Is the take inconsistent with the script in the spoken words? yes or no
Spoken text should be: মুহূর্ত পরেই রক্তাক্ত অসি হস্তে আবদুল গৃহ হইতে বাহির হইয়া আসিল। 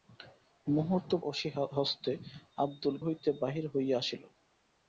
yes